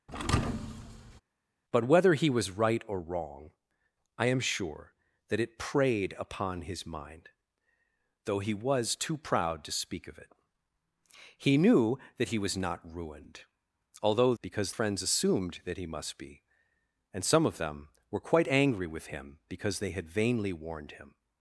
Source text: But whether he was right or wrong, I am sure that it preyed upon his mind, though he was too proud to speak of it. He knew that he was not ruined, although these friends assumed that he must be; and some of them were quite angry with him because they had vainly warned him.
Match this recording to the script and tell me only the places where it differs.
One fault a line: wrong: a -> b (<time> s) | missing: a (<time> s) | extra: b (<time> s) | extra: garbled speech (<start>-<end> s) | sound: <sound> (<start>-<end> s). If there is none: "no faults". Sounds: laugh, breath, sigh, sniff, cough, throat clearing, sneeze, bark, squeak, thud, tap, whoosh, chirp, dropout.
sound: thud (0.1-1.2 s)
wrong: these -> because (14.4 s)